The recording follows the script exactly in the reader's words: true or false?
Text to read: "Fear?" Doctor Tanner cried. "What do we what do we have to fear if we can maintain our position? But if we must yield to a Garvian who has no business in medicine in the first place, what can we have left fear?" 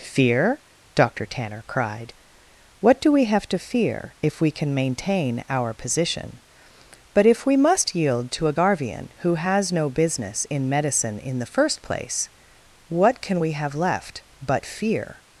false